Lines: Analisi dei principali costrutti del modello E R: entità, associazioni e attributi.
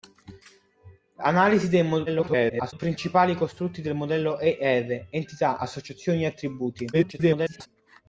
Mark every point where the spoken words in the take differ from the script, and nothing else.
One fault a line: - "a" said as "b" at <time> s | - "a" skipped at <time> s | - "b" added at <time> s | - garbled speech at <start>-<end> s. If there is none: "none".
- garbled speech at 2.1-2.7 s
- garbled speech at 6.9-7.7 s